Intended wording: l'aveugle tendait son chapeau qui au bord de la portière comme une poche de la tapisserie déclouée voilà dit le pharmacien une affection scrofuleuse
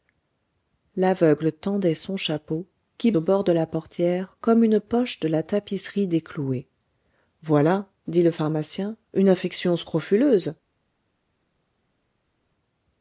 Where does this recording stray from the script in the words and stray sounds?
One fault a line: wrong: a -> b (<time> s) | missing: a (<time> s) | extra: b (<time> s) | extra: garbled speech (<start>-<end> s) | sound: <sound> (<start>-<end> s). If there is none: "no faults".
no faults